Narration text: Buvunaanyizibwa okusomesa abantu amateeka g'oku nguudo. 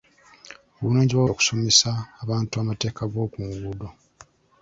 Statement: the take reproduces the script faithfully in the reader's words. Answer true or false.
true